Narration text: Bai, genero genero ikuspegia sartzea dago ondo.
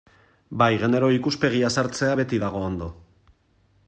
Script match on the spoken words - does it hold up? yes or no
no